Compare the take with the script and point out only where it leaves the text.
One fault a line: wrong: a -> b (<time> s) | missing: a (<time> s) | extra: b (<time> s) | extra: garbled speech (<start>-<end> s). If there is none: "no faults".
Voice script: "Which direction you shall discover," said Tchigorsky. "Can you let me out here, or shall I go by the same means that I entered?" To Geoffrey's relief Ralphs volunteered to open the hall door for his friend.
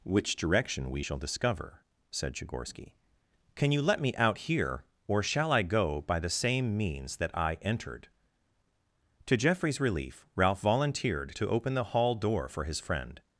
wrong: you -> we (0.9 s)
wrong: Ralphs -> Ralph (10.3 s)